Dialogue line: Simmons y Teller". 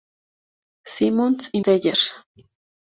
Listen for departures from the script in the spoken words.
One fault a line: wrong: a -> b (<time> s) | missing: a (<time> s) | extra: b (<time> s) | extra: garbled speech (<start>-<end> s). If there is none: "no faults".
no faults